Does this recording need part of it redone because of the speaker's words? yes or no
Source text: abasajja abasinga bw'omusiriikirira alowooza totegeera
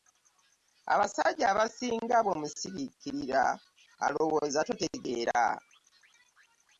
no